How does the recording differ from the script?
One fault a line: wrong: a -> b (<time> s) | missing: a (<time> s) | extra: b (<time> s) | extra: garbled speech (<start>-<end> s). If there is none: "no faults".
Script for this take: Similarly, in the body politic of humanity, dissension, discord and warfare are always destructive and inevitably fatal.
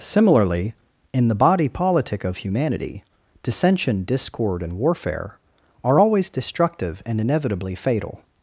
no faults